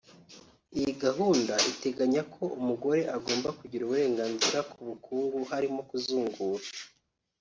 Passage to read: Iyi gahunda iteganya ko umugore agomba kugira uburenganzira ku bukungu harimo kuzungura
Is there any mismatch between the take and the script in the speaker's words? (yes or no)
no